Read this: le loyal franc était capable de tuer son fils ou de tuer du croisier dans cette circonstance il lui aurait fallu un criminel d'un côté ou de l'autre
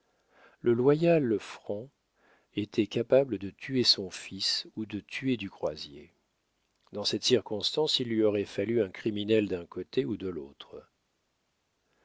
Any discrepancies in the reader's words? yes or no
no